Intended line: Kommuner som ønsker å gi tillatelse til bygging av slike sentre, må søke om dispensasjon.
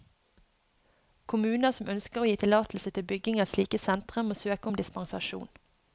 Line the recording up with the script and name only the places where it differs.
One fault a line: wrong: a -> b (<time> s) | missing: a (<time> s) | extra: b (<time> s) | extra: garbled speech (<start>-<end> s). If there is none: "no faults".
no faults